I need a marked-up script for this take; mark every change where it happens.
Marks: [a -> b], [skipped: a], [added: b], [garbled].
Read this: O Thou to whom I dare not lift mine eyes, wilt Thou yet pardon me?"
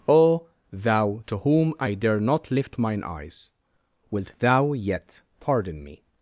O Thou to whom I dare not lift mine eyes, wilt Thou yet pardon me?"